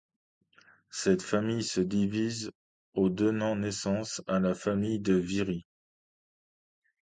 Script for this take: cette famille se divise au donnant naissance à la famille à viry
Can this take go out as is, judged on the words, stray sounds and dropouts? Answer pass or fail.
fail